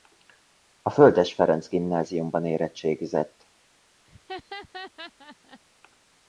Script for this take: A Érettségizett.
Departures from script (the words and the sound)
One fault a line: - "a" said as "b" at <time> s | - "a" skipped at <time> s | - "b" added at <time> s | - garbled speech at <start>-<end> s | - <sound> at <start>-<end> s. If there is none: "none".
- "Földes Ferenc Gimnáziumban" added at 0.9 s
- laugh at 4.0-5.6 s